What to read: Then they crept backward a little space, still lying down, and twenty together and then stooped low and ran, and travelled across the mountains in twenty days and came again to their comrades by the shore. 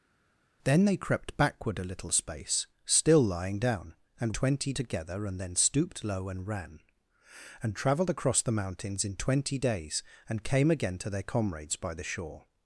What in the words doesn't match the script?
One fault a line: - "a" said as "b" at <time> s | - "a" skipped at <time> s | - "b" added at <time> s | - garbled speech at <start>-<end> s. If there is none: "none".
none